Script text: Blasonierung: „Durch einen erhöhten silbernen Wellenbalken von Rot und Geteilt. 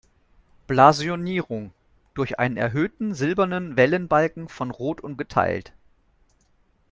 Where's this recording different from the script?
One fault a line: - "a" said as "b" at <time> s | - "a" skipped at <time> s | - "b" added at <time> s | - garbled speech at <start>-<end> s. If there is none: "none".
none